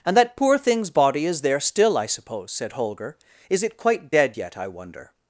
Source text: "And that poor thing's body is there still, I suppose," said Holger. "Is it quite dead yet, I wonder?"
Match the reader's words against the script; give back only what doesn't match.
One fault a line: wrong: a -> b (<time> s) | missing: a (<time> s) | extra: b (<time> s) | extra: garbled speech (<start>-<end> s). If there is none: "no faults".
no faults